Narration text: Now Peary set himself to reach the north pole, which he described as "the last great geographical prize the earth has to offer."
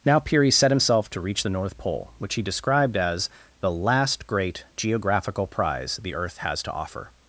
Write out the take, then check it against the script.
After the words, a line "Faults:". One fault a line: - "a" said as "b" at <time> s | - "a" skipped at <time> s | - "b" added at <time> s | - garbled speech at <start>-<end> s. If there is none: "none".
Now Peary set himself to reach the north pole, which he described as "the last great geographical prize the earth has to offer."
Faults:
none